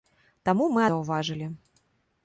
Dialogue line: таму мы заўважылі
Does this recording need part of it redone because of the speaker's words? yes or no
no